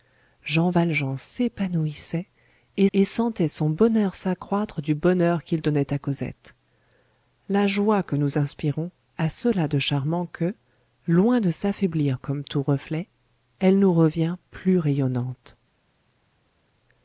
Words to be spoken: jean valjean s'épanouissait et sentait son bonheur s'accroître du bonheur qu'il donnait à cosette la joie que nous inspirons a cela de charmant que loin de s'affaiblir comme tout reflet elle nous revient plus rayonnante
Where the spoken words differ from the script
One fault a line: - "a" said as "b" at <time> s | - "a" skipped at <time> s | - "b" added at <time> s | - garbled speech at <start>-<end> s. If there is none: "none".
- "et" added at 2.9 s